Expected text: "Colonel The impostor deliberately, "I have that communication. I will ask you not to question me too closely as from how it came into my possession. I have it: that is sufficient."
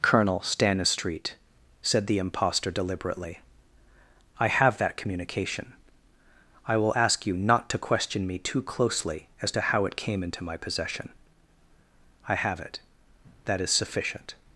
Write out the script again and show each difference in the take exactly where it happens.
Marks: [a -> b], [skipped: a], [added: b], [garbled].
"Colonel [added: Stanistreet said] The impostor deliberately, "I have that communication. I will ask you not to question me too closely as [from -> to] how it came into my possession. I have it: that is sufficient."